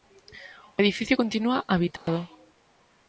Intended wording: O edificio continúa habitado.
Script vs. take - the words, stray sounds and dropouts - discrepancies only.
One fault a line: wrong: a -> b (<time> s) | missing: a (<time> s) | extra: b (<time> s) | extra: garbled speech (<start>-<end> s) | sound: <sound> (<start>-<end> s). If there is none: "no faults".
sound: dropout (2.0-2.1 s)